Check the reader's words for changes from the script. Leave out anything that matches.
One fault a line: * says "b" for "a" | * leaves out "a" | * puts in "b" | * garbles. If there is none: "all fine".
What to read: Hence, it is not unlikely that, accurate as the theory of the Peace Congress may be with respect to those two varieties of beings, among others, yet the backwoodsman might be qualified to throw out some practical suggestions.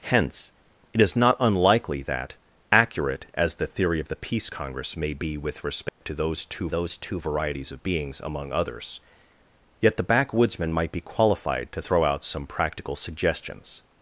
* puts in "those two"